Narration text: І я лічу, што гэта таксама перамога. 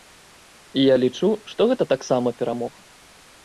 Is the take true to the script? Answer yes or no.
yes